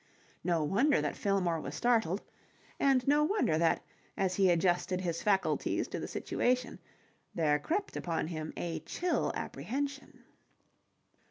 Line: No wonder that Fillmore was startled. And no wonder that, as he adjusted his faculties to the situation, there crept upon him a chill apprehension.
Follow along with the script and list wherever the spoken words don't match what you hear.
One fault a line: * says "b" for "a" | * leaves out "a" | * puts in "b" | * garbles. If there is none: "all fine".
all fine